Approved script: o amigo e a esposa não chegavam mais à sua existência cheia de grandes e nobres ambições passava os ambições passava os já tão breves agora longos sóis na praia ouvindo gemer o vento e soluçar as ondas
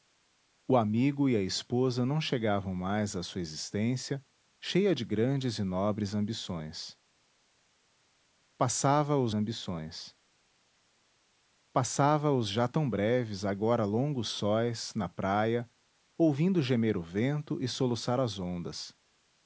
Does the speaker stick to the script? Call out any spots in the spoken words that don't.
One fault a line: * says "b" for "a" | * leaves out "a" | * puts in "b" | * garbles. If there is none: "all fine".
all fine